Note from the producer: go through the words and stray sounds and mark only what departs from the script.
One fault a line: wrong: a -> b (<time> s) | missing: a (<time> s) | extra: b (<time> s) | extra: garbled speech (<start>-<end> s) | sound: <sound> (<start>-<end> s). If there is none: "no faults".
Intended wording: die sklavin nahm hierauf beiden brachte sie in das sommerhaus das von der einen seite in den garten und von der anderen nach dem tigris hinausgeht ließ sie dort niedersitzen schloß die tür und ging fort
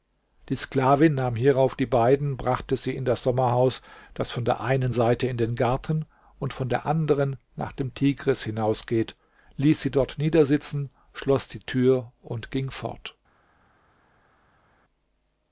extra: die (1.8 s)